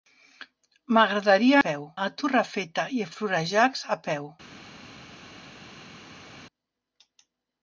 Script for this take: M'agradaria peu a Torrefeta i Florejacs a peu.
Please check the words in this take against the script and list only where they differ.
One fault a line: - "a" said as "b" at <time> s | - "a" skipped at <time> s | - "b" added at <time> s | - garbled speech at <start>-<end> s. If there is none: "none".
none